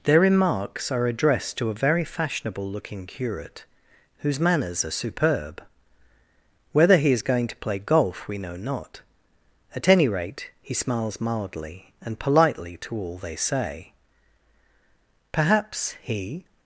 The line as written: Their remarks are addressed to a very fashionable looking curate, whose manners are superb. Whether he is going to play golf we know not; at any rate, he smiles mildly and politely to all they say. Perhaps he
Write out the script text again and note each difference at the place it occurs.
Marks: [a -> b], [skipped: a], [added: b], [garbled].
Their remarks are addressed to a very fashionable looking curate, whose manners are superb. Whether he is going to play golf we know not; at any rate, he smiles mildly and politely to all they say. Perhaps he